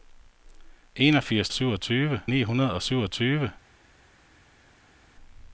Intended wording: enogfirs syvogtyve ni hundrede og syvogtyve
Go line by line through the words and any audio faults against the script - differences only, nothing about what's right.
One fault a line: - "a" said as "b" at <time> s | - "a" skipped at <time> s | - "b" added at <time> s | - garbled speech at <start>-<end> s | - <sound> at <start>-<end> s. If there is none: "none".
none